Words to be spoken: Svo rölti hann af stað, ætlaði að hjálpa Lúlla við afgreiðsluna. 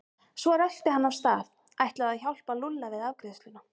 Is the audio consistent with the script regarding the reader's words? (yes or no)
yes